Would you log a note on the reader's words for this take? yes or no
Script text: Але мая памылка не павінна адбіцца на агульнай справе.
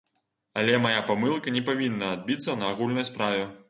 no